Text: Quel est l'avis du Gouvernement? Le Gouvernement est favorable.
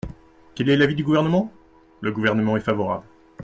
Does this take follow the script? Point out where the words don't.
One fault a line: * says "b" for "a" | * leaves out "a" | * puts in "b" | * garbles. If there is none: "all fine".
all fine